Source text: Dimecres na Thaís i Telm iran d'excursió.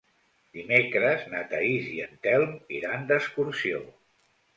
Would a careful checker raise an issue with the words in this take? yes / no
yes